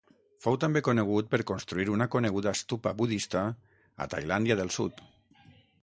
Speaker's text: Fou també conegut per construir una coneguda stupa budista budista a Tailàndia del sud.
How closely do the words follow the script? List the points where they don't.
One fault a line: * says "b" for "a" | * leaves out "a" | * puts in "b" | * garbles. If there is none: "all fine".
* leaves out "budista"